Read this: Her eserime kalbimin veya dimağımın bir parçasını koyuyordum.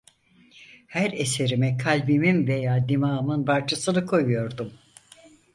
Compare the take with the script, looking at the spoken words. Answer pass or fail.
fail